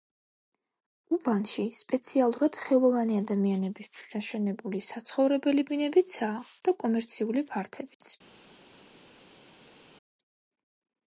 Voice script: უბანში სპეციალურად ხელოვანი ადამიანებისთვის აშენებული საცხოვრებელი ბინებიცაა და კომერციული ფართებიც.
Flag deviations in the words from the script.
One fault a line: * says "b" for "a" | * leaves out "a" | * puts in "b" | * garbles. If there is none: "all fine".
all fine